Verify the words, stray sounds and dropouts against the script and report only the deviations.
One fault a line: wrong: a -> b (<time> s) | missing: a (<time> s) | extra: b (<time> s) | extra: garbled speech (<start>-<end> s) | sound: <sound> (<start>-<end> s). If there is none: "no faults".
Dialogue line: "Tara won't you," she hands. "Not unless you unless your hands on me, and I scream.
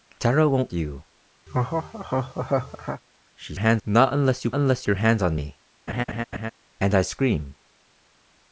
sound: laugh (1.5-3.0 s)
sound: laugh (5.9-6.5 s)